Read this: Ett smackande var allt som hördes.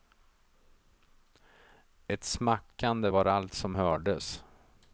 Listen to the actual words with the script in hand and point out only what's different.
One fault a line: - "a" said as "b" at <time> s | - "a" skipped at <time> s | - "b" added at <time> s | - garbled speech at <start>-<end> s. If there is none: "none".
none